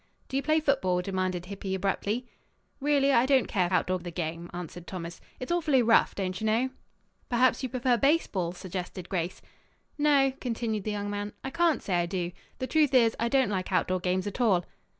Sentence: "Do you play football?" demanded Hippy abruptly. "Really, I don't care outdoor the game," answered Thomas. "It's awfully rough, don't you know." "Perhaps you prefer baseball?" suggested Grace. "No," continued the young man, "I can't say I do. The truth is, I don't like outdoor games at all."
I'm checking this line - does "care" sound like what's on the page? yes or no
yes